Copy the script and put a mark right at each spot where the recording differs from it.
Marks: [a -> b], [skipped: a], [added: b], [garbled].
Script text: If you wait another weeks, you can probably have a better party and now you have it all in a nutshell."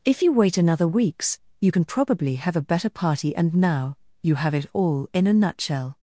If you wait another weeks, you can probably have a better party and now you have it all in a nutshell."